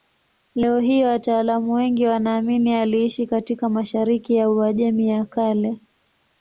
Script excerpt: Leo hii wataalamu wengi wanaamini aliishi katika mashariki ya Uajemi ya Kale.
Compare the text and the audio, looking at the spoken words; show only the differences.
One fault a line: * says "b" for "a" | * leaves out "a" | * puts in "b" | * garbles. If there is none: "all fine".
all fine